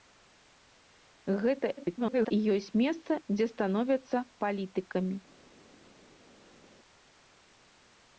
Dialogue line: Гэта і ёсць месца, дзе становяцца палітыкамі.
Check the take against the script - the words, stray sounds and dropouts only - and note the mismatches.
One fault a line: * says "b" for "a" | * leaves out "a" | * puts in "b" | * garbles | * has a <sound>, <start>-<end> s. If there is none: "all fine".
* garbles